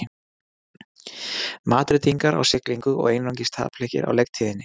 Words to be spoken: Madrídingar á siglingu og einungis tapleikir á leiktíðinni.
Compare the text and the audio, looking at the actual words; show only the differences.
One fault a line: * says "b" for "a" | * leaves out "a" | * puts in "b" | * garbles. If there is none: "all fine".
all fine